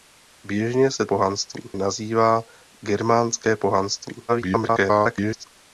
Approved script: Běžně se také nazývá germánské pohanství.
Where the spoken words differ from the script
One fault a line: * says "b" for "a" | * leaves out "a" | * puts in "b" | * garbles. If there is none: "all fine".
* says "pohanství" for "také"
* garbles